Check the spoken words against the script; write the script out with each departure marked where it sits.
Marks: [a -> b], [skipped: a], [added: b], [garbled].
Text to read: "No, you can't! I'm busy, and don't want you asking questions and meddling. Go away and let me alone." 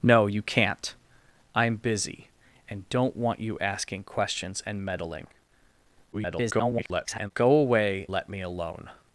"No, you can't! I'm busy, and don't want you asking questions and meddling. [garbled] Go away [skipped: and] let me alone."